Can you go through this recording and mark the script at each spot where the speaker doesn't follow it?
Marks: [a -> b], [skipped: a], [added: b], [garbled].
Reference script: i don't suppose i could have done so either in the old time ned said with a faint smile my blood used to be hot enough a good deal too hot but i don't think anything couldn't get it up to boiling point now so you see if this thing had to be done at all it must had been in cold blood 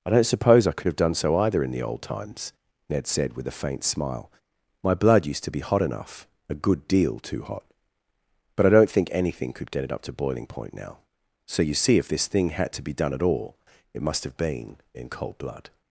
i don't suppose i could have done so either in the old [time -> times] ned said with a faint smile my blood used to be hot enough a good deal too hot but i don't think anything [couldn't -> could] get it up to boiling point now so you see if this thing had to be done at all it must [had -> have] been in cold blood